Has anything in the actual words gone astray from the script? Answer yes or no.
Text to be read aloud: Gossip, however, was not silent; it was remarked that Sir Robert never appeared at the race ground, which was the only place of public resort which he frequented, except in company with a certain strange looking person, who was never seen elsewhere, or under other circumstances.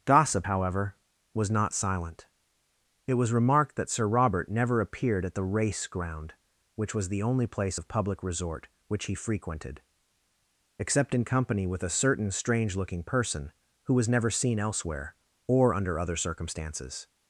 no